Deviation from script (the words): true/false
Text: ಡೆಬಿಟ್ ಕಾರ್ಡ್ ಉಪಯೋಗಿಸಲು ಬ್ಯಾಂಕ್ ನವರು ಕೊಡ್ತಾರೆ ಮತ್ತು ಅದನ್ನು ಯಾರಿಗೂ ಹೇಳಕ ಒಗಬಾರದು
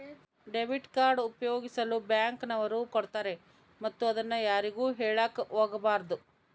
false